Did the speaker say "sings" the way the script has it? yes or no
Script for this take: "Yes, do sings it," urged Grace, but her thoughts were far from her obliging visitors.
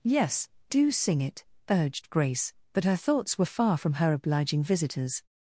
no